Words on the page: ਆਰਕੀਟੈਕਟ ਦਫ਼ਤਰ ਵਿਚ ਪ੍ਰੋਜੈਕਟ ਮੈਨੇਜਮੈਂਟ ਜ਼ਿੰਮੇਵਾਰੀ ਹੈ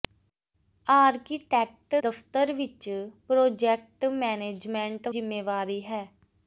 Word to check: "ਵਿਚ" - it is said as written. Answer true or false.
true